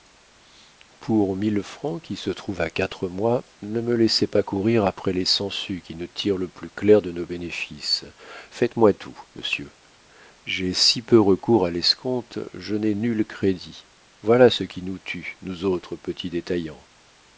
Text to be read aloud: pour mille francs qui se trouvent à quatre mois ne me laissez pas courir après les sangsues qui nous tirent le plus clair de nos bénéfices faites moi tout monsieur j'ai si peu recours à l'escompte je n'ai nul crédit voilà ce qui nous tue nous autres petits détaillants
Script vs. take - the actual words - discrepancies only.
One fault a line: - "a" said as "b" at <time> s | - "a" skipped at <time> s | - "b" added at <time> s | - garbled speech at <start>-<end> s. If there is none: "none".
none